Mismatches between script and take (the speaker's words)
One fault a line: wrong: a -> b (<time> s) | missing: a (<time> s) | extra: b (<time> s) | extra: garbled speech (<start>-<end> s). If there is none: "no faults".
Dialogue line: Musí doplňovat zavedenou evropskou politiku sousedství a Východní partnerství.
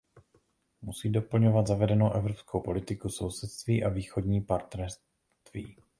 no faults